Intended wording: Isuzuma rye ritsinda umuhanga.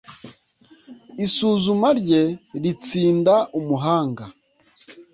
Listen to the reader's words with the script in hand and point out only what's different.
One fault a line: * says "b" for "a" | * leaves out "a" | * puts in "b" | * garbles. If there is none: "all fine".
all fine